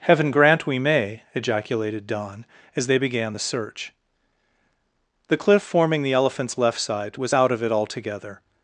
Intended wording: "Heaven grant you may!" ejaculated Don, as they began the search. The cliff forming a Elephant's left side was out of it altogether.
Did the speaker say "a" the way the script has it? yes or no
no